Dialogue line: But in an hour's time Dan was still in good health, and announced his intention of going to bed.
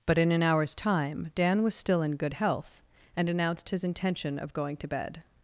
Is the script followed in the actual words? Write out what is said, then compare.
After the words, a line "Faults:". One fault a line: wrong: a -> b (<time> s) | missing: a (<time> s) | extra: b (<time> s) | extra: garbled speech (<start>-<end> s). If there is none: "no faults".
But in an hour's time Dan was still in good health, and announced his intention of going to bed.
Faults:
no faults